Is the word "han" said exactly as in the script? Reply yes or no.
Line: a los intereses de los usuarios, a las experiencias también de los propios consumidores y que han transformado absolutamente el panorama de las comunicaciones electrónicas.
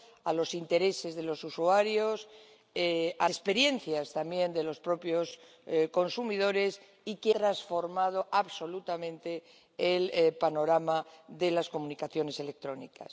no